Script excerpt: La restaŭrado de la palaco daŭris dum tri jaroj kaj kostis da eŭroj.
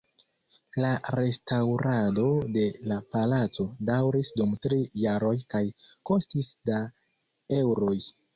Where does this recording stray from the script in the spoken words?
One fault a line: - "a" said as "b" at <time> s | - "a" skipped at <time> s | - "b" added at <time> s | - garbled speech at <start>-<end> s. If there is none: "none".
none